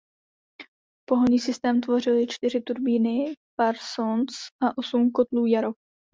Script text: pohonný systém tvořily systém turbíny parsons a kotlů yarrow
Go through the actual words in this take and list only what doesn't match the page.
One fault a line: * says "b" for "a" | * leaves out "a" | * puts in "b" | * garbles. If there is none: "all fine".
* says "čtyři" for "systém"
* puts in "osm"